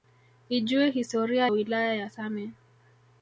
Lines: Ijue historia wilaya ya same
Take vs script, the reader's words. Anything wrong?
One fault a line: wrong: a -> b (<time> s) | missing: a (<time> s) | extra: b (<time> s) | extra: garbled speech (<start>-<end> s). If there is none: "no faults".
no faults